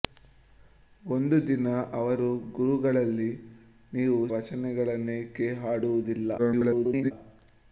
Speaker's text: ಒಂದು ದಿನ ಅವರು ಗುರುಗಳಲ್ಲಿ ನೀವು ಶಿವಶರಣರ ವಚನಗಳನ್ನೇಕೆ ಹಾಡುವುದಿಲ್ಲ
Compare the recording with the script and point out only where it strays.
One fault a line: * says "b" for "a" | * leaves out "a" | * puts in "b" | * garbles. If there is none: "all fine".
* leaves out "ಶಿವಶರಣರ"
* garbles